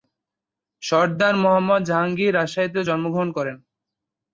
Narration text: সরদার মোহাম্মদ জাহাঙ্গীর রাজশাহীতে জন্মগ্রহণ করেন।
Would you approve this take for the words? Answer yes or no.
yes